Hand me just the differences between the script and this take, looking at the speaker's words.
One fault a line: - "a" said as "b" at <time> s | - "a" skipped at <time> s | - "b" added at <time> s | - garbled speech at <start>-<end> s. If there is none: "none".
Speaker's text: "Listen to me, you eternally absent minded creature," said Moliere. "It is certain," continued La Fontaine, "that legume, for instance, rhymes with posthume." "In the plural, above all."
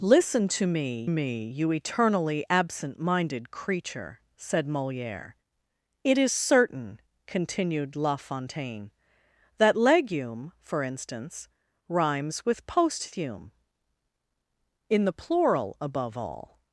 - "me" added at 1.1 s